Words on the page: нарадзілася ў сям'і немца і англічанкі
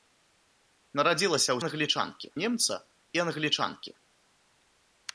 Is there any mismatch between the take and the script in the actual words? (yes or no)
yes